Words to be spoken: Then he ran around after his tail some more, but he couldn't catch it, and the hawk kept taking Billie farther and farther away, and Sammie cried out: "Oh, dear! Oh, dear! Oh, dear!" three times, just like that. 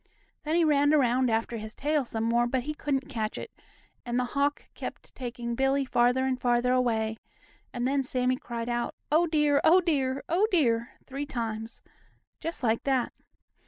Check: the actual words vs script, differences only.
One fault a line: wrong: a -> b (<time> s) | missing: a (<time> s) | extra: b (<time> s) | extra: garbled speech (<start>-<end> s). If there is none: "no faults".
extra: then (7.8 s)